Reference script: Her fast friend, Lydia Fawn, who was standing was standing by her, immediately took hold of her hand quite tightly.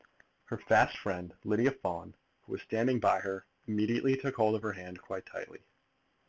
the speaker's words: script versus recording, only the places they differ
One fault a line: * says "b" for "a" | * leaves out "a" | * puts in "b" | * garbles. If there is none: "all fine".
* leaves out "was standing"